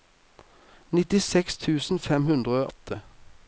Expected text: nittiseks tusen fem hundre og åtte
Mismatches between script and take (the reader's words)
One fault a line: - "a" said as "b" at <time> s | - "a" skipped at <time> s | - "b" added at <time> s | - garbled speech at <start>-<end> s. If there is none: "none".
- "og" skipped at 2.7 s